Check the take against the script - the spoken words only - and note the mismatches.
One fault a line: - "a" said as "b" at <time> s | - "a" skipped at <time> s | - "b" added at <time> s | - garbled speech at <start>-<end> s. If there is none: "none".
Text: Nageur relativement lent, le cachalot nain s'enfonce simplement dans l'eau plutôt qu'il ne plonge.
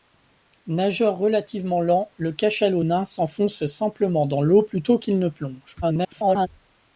- garbled speech at 5.8-6.5 s